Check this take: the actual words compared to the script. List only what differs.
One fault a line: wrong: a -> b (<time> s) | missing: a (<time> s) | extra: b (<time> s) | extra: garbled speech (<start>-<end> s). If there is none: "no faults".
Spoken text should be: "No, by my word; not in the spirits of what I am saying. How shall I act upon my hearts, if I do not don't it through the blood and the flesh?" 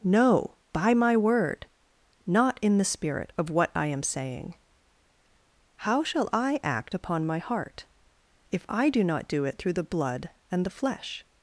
wrong: spirits -> spirit (2.9 s)
wrong: hearts -> heart (7.4 s)
wrong: don't -> do (9.3 s)